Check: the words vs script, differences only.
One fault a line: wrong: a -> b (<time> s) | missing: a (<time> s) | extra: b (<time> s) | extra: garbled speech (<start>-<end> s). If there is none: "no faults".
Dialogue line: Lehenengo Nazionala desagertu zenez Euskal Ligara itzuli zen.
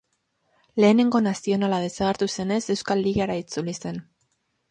no faults